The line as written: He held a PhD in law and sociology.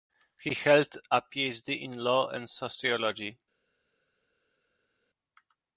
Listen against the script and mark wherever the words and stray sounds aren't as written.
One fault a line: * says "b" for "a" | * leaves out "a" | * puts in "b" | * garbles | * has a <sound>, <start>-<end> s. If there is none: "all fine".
all fine